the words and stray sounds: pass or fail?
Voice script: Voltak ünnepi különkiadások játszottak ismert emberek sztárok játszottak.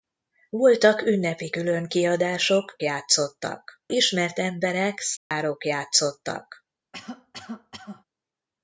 fail